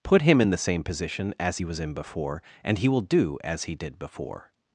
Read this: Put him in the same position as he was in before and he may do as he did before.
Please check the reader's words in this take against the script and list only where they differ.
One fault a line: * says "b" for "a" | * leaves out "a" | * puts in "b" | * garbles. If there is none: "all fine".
* says "will" for "may"